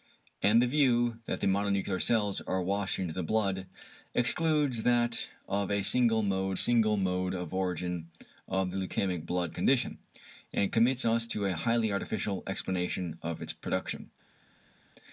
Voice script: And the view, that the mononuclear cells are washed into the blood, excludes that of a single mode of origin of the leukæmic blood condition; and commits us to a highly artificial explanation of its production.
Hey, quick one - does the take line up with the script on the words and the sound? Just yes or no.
no